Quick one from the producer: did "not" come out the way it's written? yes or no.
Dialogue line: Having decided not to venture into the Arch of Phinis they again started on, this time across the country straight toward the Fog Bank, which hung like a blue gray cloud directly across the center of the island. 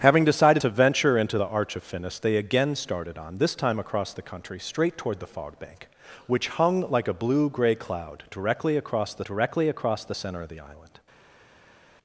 no